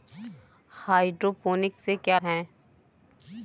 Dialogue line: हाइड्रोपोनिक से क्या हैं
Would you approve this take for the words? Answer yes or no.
yes